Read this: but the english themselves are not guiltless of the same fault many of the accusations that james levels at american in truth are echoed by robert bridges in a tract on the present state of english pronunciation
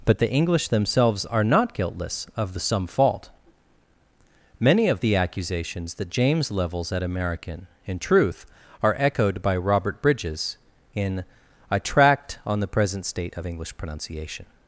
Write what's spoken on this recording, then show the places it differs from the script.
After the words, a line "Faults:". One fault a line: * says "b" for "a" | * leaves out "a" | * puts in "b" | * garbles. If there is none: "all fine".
but the english themselves are not guiltless of the some fault many of the accusations that james levels at american in truth are echoed by robert bridges in a tract on the present state of english pronunciation
Faults:
* says "some" for "same"